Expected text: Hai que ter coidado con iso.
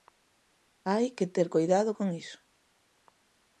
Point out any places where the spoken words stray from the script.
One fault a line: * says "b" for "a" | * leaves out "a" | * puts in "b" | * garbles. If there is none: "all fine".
all fine